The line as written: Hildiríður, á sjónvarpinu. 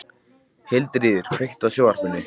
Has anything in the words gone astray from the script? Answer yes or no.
yes